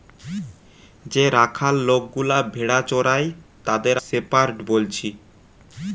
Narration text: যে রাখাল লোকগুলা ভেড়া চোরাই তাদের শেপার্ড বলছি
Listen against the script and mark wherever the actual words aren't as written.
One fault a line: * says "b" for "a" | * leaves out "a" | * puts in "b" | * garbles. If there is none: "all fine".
all fine